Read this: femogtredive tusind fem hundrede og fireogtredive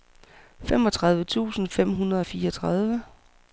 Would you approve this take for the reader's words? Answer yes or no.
yes